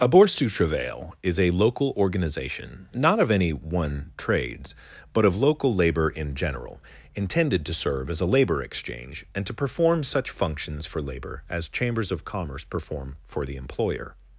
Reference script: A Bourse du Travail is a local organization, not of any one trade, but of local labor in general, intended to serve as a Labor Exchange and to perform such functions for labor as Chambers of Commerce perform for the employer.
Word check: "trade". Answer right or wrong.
wrong